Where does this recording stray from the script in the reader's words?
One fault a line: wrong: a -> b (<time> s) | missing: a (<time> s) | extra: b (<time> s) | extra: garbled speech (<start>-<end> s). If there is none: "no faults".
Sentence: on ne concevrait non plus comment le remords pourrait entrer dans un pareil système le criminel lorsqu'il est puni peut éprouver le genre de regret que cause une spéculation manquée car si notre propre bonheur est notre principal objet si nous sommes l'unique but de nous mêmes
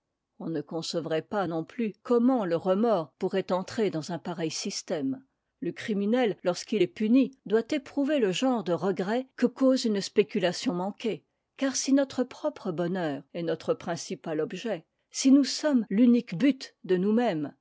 extra: pas (1.2 s)
wrong: peut -> doit (7.5 s)